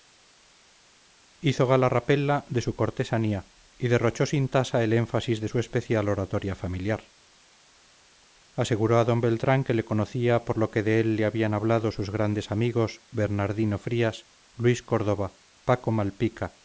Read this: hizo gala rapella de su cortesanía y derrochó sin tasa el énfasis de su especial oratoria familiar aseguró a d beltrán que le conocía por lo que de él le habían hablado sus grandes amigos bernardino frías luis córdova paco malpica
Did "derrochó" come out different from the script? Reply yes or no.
no